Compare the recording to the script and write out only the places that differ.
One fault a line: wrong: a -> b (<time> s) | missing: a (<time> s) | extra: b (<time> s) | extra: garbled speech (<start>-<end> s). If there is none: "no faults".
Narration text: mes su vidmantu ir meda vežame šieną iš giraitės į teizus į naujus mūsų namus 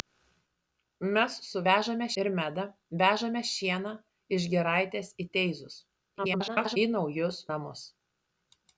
wrong: vidmantu -> vežame (1.7 s)
extra: garbled speech (6.2-6.8 s)
missing: mūsų (7.4 s)